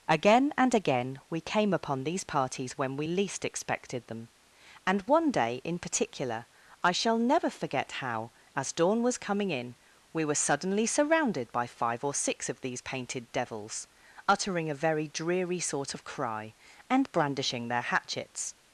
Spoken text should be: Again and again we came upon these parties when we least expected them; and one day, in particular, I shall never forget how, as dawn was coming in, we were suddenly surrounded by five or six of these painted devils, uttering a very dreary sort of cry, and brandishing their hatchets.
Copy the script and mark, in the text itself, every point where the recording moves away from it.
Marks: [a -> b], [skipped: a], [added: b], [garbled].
Again and again we came upon these parties when we least expected them; and one day, in particular, I shall never forget how, as dawn was coming in, we were suddenly surrounded by five or six of these painted devils, uttering a very dreary sort of cry, and brandishing their hatchets.